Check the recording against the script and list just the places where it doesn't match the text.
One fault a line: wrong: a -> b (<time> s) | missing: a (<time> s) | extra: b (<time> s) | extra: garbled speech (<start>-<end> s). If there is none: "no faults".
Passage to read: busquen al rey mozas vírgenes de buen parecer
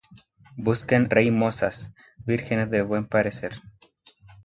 missing: al (1.1 s)